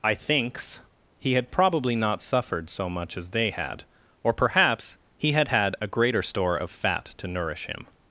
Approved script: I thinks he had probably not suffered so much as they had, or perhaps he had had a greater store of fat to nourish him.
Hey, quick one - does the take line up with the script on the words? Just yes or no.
yes